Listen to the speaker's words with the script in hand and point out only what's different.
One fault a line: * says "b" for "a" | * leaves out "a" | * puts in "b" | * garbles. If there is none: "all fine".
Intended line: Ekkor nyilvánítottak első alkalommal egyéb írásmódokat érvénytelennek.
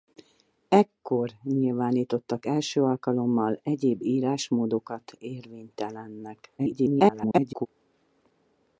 * garbles